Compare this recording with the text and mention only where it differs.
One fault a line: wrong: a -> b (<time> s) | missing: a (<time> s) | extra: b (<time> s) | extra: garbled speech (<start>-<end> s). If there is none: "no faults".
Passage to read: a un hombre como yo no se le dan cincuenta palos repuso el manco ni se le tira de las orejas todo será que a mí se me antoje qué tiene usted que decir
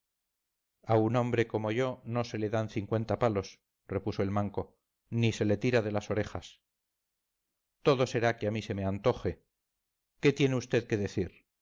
no faults